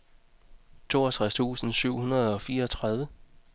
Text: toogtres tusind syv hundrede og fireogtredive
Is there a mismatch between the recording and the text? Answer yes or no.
no